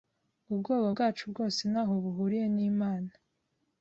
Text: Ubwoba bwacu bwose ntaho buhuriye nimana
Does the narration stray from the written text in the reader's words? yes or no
no